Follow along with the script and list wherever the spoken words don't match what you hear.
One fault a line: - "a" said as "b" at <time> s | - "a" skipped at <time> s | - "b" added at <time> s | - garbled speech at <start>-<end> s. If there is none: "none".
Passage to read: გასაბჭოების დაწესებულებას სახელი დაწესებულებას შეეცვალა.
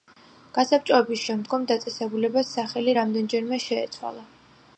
- "შემდგომ" added at 1.2 s
- "დაწესებულებას" said as "რამდენჯერმე" at 3.0 s